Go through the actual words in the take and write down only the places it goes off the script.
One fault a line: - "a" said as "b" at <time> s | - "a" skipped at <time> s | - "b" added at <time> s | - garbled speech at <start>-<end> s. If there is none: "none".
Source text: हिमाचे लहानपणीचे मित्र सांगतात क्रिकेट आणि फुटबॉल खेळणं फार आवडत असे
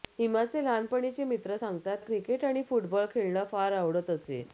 none